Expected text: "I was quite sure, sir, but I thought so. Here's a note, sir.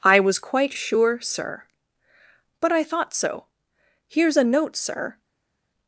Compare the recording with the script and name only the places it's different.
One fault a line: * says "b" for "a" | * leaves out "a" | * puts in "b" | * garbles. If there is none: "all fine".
all fine